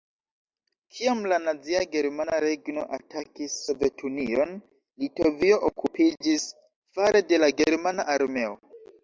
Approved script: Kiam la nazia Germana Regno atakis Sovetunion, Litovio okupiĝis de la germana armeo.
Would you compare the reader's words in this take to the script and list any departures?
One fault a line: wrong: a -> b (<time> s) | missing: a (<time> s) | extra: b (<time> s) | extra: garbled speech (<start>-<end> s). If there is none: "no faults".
extra: fare (7.0 s)